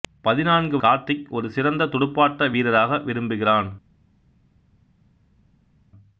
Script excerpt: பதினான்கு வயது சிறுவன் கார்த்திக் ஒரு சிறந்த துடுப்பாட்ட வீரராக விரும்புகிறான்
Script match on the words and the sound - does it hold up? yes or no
no